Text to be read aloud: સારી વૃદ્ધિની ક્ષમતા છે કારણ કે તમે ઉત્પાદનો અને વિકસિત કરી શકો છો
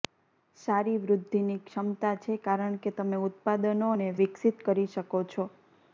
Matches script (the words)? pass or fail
pass